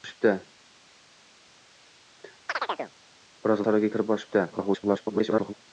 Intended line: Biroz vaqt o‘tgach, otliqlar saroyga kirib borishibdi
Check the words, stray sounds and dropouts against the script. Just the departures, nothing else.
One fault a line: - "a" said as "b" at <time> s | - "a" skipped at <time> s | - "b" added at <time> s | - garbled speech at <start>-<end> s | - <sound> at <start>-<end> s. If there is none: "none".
- chirp at 2.5-2.9 s
- "vaqt o‘tgach otliqlar" skipped at 3.6 s
- garbled speech at 4.5-5.5 s